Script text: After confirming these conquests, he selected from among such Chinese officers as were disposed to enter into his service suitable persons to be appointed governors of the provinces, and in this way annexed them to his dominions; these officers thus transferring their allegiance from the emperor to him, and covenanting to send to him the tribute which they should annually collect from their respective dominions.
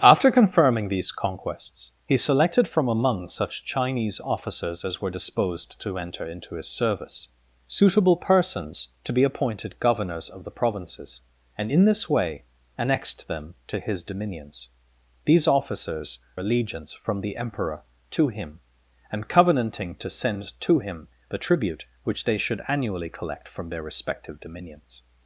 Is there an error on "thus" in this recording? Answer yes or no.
yes